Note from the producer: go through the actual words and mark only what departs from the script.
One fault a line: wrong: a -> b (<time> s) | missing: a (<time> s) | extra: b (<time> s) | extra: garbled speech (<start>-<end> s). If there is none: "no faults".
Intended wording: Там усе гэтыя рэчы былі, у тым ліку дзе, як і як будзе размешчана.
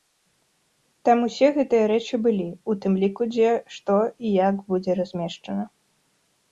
wrong: як -> што (3.8 s)